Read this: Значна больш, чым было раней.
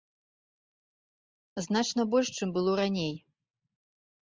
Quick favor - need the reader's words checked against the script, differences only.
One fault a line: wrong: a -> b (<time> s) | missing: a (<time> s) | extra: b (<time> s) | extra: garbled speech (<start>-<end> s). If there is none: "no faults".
no faults